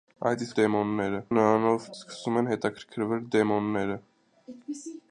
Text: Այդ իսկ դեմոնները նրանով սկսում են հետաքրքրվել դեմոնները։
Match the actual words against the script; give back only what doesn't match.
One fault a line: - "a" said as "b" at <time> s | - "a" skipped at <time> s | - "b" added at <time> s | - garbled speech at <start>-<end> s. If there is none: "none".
none